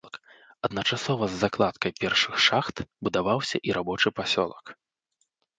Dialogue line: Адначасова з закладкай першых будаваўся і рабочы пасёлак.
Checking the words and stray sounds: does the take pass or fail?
fail